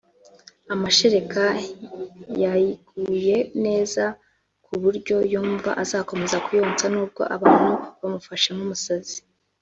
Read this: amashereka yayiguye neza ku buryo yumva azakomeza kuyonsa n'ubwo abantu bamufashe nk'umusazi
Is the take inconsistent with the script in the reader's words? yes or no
no